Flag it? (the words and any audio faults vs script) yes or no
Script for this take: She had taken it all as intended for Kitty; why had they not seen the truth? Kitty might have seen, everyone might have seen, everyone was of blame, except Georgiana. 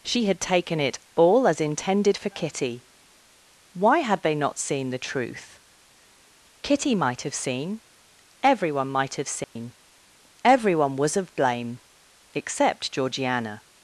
yes